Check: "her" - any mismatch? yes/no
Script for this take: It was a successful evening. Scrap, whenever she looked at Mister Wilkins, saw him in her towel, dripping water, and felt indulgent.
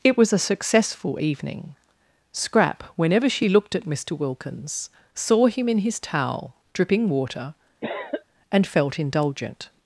yes